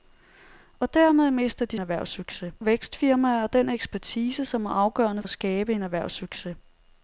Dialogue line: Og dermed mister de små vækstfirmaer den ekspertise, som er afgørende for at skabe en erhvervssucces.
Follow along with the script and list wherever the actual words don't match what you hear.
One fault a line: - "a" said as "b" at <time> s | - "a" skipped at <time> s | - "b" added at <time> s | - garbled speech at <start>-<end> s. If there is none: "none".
- "små" said as "erhvervssucces" at 1.8 s
- "for" skipped at 5.2 s